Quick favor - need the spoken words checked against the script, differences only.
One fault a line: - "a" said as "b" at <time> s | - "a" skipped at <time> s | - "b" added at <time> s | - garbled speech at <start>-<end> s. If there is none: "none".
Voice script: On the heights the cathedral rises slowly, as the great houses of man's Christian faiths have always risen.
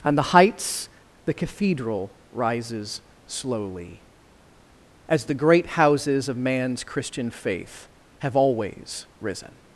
- "faiths" said as "faith" at 7.3 s